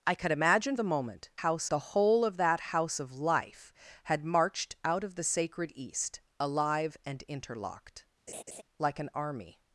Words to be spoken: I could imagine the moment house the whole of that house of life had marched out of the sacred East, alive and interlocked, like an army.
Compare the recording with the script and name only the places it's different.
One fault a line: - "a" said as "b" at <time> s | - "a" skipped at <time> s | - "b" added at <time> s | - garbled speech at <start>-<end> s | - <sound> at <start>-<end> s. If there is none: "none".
- laugh at 8.3-8.6 s